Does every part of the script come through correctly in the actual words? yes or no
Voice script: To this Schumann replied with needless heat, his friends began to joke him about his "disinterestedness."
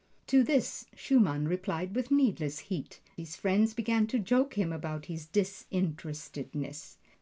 yes